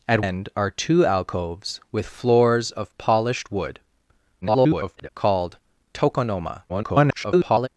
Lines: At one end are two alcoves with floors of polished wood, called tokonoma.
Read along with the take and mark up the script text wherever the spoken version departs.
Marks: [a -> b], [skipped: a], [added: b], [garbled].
At [skipped: one] end are two alcoves with floors of polished wood, [garbled] called tokonoma. [garbled]